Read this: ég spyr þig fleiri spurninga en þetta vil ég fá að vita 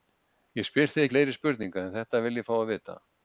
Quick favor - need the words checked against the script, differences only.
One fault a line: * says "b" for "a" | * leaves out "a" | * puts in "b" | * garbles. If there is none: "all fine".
all fine